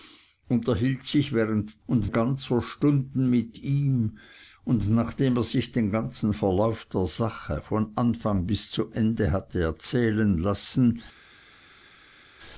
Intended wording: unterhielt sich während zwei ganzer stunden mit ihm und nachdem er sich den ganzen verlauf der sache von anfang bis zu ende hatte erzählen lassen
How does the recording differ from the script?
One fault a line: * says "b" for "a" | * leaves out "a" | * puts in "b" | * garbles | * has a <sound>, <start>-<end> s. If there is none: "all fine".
* says "und" for "zwei"